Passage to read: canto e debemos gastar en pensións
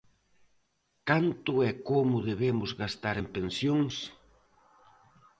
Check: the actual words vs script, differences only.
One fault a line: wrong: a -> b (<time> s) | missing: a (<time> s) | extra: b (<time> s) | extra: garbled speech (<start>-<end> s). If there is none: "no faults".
extra: como (1.9 s)